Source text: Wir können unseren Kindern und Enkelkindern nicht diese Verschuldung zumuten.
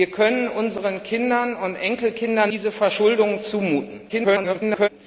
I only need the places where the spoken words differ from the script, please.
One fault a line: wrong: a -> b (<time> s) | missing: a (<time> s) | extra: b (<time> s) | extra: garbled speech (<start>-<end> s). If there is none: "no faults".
missing: nicht (2.5 s)
extra: garbled speech (4.1-4.9 s)